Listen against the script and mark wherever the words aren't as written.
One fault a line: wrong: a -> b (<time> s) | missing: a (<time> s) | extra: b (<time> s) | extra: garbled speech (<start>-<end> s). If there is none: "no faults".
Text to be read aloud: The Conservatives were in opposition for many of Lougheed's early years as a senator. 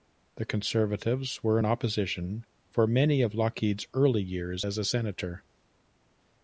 no faults